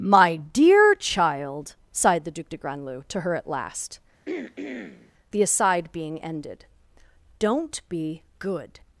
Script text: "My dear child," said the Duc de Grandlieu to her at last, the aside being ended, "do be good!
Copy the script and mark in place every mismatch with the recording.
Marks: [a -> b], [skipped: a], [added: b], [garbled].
"My dear child," [said -> sighed] the Duc de Grandlieu to her at last, the aside being ended, ["do -> don't] be good!